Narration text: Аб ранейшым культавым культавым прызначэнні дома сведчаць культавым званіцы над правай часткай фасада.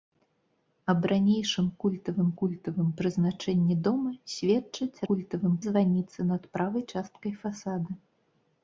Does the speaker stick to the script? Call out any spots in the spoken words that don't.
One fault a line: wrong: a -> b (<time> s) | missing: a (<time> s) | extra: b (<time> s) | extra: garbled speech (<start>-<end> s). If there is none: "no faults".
no faults